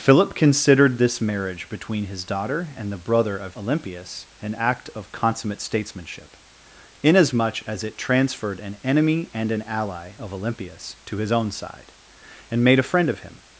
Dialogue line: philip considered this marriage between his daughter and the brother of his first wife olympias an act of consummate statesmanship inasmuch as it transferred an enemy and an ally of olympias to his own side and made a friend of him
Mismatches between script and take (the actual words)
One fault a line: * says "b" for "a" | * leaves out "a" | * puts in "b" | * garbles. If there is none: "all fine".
* leaves out "his first wife"